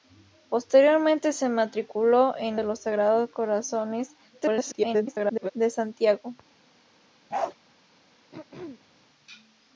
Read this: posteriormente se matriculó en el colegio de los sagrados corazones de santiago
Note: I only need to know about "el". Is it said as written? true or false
false